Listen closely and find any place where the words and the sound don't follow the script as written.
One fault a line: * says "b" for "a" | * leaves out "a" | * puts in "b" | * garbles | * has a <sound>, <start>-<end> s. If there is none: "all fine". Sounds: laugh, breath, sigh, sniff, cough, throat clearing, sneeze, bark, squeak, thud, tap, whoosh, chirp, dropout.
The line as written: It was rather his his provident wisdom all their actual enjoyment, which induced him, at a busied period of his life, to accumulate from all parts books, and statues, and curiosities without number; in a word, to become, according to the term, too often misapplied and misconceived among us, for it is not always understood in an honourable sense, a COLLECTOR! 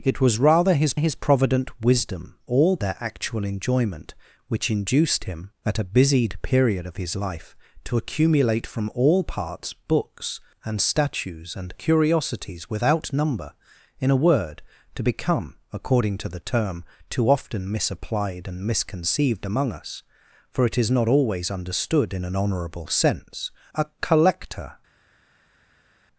all fine